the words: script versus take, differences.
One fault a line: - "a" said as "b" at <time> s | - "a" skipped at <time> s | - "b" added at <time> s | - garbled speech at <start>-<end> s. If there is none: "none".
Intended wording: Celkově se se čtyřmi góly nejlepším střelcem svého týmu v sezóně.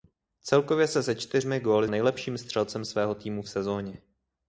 none